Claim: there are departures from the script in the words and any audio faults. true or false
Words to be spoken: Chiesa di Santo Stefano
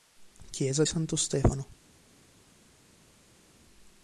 true